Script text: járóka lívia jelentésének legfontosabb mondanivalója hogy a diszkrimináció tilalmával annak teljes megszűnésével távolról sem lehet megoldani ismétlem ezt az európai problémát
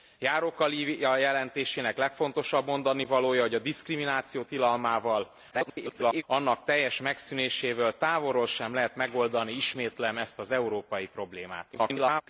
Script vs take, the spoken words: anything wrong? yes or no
yes